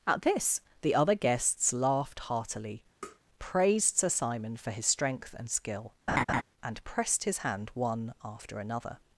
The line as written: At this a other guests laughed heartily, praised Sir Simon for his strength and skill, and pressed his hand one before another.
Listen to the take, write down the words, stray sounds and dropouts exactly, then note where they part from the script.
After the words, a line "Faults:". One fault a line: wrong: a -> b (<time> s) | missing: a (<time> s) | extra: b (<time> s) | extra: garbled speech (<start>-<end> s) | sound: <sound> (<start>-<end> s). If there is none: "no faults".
At this the other guests laughed heartily, praised Sir Simon for his strength and skill, and pressed his hand one after another.
Faults:
wrong: a -> the (0.8 s)
sound: tap (3.0-3.2 s)
sound: laugh (6.1-6.4 s)
wrong: before -> after (8.2 s)